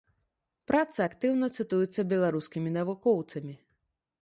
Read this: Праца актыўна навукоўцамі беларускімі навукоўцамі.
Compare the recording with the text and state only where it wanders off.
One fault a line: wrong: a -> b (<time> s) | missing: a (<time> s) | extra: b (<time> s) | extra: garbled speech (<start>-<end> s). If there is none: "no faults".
wrong: навукоўцамі -> цытуецца (1.6 s)